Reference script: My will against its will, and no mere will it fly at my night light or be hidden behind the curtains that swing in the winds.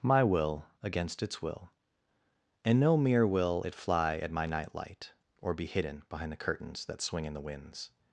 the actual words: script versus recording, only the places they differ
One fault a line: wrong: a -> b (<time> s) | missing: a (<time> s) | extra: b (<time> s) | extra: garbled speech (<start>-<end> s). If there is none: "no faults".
no faults